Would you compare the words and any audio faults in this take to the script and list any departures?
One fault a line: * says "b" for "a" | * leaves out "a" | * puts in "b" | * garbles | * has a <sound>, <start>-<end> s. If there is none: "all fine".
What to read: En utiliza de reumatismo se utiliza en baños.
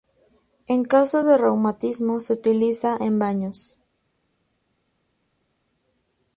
* says "caso" for "utiliza"